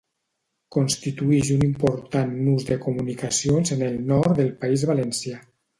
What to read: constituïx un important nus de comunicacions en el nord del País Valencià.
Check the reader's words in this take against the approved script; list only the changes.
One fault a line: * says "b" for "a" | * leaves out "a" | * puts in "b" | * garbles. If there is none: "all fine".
all fine